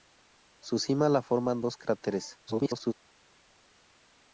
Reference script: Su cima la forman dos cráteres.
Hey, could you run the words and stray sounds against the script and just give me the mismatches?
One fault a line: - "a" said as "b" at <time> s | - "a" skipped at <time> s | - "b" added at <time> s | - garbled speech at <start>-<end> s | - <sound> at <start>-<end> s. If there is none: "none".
- garbled speech at 2.5-2.9 s